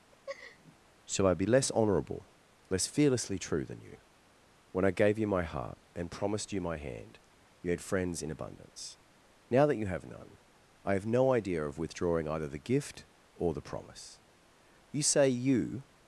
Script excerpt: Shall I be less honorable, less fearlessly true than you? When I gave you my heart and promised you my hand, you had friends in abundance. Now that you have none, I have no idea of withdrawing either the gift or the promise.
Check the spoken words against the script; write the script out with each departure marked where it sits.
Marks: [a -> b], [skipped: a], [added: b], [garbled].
Shall I be less honorable, less fearlessly true than you? When I gave you my heart and promised you my hand, you had friends in abundance. Now that you have none, I have no idea of withdrawing either the gift or the promise. [added: You say you]